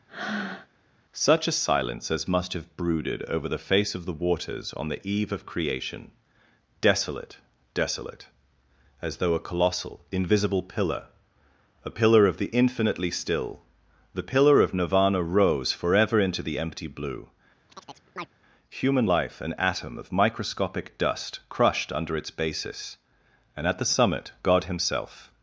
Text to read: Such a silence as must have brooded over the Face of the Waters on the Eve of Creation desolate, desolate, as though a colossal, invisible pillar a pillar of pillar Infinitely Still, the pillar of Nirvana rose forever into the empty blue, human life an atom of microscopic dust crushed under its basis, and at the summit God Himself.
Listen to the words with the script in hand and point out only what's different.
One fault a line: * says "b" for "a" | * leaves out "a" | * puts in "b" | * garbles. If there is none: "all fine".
* says "the" for "pillar"